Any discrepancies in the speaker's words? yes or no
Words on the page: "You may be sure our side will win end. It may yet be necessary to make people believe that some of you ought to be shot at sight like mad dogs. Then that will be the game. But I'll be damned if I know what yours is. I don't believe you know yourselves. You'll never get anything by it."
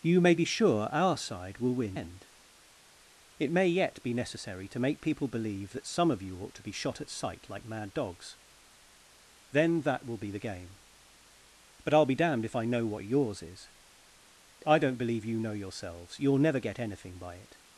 no